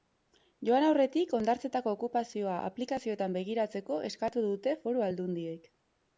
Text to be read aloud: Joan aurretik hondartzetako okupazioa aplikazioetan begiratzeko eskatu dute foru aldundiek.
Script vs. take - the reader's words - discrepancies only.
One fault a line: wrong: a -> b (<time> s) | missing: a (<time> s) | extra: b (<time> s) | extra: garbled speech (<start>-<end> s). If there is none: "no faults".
no faults